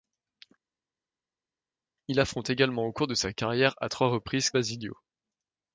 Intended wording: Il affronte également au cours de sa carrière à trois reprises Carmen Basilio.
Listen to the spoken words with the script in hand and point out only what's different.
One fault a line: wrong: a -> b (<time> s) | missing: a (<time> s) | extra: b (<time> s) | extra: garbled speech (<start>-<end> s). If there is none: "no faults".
missing: Carmen (4.5 s)